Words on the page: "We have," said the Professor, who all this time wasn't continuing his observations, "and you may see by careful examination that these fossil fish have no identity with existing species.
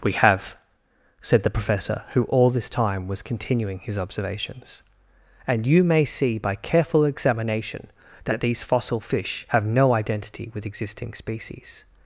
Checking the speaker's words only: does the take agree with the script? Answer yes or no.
no